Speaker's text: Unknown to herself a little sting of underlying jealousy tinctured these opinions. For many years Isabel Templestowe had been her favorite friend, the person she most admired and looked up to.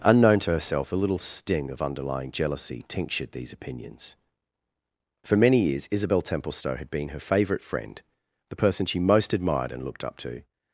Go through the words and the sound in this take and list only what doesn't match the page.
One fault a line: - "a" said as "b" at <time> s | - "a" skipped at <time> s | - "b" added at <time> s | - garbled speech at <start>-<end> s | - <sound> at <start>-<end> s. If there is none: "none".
none